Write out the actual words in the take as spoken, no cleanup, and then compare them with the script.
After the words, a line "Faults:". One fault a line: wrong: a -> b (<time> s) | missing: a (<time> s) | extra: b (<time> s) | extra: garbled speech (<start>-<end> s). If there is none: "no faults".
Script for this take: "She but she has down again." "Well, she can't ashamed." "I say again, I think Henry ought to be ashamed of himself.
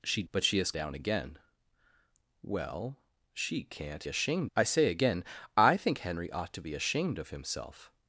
"She but she has down again." "Well, she can't ashamed." "I say again, I think Henry ought to be ashamed of himself.
Faults:
no faults